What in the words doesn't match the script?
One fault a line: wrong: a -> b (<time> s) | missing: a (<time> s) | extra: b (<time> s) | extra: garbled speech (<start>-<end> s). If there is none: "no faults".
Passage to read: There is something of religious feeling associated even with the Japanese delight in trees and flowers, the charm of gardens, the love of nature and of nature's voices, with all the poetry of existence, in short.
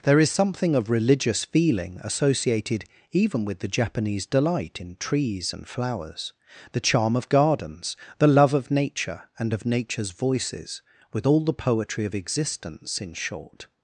no faults